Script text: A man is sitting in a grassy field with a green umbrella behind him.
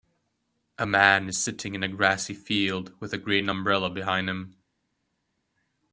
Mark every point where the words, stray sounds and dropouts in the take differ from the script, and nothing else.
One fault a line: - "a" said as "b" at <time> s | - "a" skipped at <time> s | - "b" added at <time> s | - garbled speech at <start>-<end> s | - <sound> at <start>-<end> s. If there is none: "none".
none